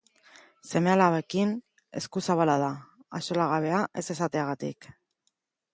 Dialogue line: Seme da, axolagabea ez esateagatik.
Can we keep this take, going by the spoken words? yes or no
no